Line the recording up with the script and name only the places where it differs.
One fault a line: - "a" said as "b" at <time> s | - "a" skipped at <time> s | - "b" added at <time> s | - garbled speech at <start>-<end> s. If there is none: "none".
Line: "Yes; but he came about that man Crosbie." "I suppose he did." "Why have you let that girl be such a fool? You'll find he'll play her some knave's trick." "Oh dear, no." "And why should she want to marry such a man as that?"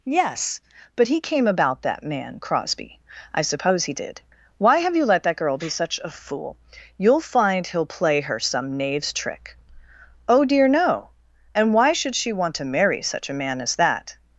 none